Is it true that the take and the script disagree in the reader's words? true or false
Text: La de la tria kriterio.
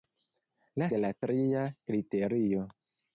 false